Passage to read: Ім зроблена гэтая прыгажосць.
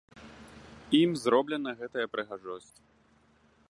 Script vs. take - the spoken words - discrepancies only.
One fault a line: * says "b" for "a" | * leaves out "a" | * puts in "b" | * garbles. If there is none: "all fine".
all fine